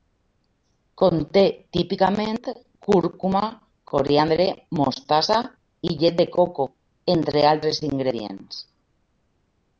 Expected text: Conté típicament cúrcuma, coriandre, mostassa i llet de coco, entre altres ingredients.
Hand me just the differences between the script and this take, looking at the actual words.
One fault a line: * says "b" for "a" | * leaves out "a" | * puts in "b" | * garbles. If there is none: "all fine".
all fine